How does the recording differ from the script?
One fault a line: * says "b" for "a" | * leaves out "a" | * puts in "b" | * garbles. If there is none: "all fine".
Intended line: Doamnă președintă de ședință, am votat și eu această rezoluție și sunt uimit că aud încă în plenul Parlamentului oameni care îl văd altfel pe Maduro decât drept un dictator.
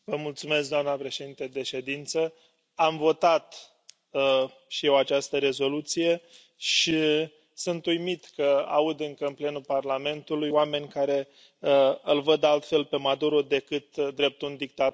all fine